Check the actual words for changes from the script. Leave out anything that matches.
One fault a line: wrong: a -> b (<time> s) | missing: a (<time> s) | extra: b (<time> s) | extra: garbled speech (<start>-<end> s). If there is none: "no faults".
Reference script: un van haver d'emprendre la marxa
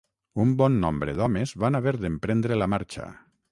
extra: bon nombre d'homes (0.6 s)